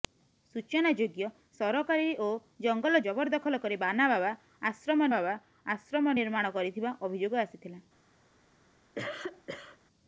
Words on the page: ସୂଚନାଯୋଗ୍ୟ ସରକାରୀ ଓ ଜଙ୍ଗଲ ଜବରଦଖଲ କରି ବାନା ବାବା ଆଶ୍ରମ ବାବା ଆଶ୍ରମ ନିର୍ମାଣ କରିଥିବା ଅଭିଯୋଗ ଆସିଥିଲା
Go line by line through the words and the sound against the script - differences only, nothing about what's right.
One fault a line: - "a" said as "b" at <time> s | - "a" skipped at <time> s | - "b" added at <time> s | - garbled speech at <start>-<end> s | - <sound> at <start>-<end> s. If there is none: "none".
- cough at 9.0-9.8 s